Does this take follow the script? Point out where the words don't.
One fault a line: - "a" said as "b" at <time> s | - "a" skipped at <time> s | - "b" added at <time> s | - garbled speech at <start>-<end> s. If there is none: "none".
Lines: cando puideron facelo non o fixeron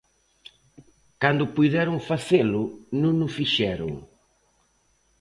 none